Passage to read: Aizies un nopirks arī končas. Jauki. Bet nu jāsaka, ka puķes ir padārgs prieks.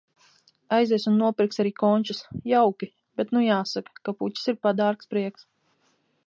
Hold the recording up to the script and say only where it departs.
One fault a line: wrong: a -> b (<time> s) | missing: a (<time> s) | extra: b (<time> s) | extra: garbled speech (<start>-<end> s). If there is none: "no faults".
no faults